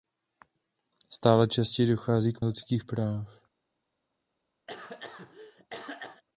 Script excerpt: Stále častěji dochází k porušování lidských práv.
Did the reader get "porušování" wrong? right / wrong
wrong